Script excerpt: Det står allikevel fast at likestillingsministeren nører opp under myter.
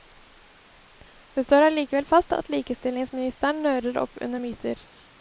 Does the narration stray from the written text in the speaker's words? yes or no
no